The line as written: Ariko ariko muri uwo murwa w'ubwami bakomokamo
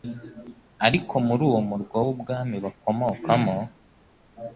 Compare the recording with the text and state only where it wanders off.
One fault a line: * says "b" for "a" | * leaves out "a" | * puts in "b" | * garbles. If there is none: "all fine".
* leaves out "ariko"